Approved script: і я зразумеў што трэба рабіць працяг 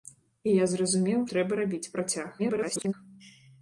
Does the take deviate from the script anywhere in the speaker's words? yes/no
yes